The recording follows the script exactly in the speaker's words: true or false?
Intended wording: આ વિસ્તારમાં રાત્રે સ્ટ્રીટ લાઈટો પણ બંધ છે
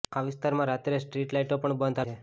true